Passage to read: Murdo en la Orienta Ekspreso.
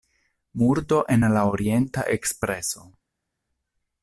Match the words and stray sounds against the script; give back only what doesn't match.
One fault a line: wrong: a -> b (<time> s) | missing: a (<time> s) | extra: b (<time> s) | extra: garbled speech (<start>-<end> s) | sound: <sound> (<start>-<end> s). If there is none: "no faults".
no faults